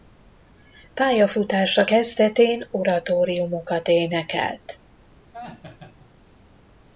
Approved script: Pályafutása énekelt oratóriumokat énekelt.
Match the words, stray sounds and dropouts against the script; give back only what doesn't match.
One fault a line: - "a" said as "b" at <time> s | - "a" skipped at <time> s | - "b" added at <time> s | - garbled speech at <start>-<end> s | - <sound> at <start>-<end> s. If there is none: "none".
- "énekelt" said as "kezdetén" at 1.8 s
- laugh at 5.3-6.1 s